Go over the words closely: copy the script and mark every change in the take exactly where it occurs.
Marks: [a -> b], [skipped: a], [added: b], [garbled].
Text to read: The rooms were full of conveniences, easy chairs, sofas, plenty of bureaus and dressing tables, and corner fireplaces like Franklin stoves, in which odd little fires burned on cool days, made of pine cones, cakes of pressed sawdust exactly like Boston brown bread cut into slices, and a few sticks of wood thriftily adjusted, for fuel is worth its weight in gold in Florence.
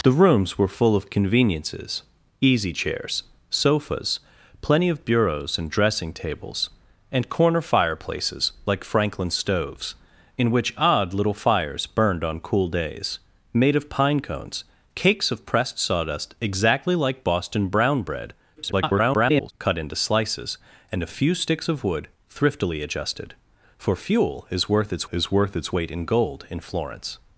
The rooms were full of conveniences, easy chairs, sofas, plenty of bureaus and dressing tables, and corner fireplaces like Franklin stoves, in which odd little fires burned on cool days, made of pine cones, cakes of pressed sawdust exactly like Boston brown bread [garbled] cut into slices, and a few sticks of wood thriftily adjusted, for fuel is worth its [added: is worth its] weight in gold in Florence.